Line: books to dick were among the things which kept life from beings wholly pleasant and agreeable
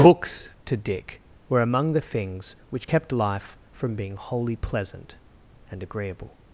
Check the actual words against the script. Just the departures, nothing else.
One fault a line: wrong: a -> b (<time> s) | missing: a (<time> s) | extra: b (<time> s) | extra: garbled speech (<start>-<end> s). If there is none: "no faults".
wrong: beings -> being (3.9 s)